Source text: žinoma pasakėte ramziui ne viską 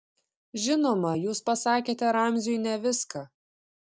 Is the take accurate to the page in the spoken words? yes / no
no